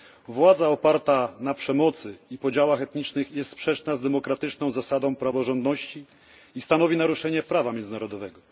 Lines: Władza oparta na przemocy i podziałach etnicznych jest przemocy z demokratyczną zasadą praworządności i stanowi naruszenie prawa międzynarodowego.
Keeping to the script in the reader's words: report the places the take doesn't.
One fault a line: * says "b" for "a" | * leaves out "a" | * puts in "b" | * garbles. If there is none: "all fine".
* says "sprzeczna" for "przemocy"